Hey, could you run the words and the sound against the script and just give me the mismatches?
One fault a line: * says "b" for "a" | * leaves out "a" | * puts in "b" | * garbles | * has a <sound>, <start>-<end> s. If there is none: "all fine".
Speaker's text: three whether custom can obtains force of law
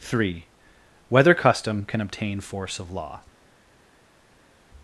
* says "obtain" for "obtains"